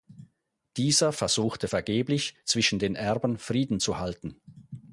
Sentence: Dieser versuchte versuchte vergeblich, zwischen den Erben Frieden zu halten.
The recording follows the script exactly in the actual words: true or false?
false